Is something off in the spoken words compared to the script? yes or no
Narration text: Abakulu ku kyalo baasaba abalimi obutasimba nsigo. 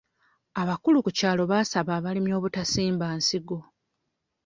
no